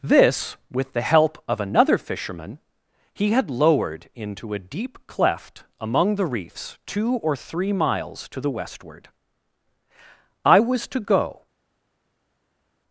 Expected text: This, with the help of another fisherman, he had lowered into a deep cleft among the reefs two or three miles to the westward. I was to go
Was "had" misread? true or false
false